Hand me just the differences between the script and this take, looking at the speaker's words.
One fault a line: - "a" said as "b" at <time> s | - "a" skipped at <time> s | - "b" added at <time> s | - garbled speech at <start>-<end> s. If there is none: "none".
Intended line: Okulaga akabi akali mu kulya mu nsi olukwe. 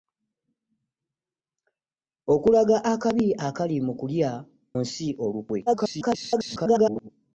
- "mu" skipped at 4.3 s
- garbled speech at 5.7-7.1 s